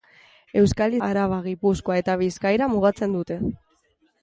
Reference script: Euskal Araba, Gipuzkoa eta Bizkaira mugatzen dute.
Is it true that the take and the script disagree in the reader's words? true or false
false